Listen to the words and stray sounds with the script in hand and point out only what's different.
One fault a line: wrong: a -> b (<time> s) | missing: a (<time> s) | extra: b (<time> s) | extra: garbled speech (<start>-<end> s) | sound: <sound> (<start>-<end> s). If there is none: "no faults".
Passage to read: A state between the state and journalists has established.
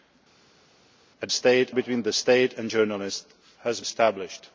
no faults